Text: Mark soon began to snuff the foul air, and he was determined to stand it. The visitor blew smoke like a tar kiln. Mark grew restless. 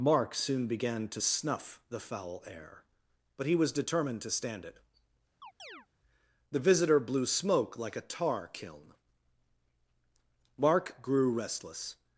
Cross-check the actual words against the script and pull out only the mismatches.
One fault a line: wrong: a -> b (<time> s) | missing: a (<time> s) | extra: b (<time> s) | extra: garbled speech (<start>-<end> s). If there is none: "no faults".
wrong: and -> but (3.4 s)